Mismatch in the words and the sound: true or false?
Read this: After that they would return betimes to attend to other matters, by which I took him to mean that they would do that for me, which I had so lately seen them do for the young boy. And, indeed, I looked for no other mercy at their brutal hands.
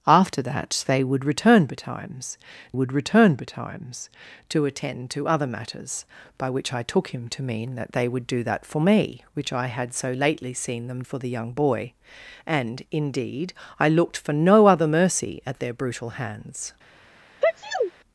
true